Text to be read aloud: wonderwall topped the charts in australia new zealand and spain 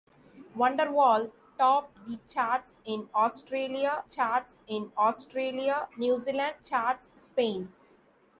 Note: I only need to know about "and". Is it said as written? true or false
false